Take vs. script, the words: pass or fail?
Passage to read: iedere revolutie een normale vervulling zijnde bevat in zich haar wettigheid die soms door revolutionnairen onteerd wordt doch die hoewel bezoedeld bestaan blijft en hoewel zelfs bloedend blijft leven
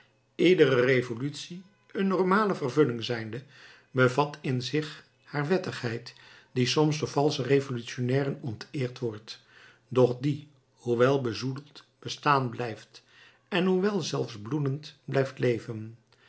fail